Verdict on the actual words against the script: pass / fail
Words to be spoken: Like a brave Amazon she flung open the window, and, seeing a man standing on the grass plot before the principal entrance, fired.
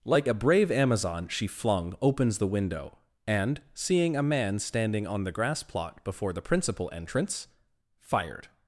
fail